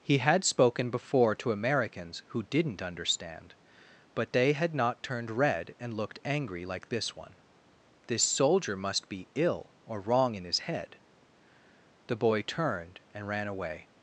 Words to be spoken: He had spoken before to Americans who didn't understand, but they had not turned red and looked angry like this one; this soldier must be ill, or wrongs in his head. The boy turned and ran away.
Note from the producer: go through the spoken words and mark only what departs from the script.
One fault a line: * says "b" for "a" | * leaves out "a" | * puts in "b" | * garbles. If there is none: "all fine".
* says "wrong" for "wrongs"